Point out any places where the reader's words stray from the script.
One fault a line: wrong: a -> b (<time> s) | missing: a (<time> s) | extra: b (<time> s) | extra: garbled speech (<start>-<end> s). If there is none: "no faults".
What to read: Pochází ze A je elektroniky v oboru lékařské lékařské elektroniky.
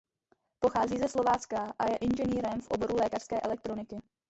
extra: Slovácka (1.1 s)
wrong: elektroniky -> inženýrem (2.0 s)
missing: lékařské (3.4 s)